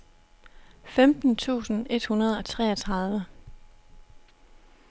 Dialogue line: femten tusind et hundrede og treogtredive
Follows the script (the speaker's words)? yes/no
yes